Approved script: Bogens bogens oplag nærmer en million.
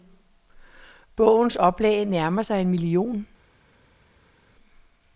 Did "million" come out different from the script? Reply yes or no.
no